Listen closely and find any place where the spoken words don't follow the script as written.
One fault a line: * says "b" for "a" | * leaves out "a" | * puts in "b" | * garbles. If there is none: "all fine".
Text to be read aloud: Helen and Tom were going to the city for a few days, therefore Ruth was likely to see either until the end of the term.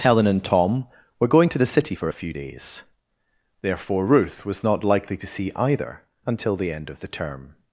* puts in "not"